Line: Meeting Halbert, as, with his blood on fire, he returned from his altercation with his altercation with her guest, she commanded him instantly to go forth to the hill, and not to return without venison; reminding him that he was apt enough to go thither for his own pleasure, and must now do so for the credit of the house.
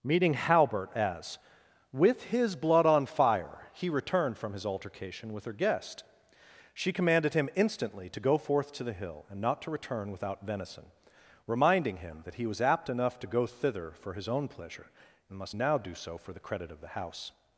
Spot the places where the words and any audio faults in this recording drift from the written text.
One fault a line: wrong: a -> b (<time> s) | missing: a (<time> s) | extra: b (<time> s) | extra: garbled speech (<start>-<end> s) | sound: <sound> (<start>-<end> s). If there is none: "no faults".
missing: his altercation with (5.5 s)